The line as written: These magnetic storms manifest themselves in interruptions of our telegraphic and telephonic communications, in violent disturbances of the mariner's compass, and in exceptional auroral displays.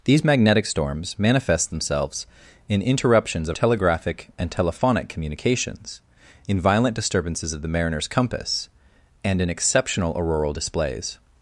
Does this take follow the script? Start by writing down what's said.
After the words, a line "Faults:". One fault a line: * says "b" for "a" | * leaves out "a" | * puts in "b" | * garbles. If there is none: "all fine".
These magnetic storms manifest themselves in interruptions of telegraphic and telephonic communications, in violent disturbances of the mariner's compass, and in exceptional auroral displays.
Faults:
* leaves out "our"